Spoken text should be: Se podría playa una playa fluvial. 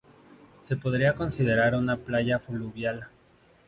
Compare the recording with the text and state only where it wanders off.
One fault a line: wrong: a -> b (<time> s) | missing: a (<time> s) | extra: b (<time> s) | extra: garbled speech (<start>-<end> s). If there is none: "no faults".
wrong: playa -> considerar (1.1 s)